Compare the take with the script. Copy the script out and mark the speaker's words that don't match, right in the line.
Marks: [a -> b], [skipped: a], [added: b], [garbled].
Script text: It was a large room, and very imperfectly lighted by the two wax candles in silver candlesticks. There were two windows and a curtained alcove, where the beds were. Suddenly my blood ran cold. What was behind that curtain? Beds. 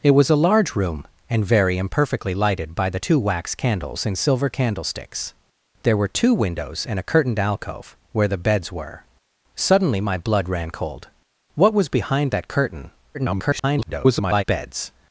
It was a large room, and very imperfectly lighted by the two wax candles in silver candlesticks. There were two windows and a curtained alcove, where the beds were. Suddenly my blood ran cold. What was behind that curtain? [garbled] Beds.